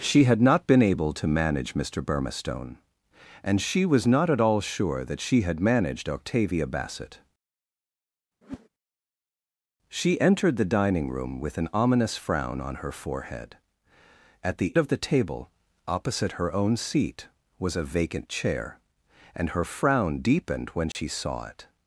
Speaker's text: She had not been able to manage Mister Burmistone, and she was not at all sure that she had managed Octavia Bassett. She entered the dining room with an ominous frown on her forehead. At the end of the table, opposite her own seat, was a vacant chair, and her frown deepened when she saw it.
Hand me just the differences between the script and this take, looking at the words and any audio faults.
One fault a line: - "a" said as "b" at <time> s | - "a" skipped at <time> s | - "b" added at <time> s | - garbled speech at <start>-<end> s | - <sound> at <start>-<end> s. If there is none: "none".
- whoosh at 8.4-8.7 s
- "end" skipped at 14.8 s
- dropout at 20.9-21.0 s